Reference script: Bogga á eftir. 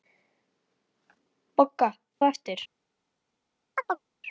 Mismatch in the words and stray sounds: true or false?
true